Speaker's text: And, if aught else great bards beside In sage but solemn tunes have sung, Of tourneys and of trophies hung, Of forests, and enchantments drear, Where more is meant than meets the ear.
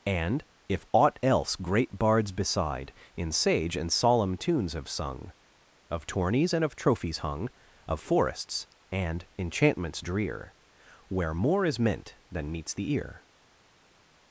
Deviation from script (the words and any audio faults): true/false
true